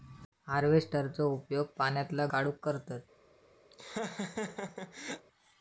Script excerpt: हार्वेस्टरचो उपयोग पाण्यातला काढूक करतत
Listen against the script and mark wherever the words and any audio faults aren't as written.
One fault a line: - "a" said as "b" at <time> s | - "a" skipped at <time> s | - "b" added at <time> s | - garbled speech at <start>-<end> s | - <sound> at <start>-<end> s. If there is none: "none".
- laugh at 3.7-5.3 s